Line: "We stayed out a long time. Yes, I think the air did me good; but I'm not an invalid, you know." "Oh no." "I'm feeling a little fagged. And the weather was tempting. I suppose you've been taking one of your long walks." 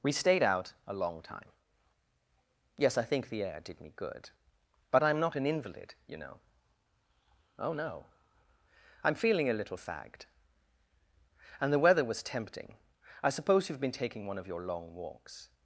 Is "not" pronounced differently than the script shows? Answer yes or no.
no